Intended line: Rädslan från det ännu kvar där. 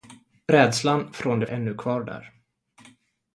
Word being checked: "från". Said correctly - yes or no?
yes